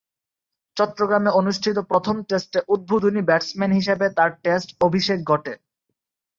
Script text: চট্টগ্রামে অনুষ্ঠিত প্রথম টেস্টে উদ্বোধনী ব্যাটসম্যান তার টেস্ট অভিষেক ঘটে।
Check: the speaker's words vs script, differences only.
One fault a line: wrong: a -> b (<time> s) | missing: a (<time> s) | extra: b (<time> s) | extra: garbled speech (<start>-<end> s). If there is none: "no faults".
extra: হিসেবে (3.8 s)